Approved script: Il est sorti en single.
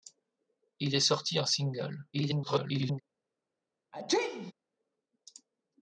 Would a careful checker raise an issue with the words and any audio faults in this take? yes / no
yes